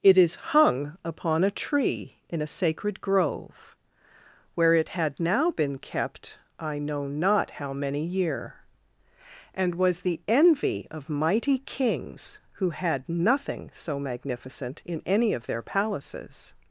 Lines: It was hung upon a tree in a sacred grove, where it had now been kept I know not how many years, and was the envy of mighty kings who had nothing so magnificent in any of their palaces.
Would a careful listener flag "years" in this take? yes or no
yes